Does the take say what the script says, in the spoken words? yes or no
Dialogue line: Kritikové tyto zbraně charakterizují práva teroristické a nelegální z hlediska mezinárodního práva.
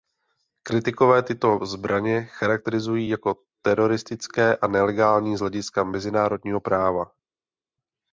no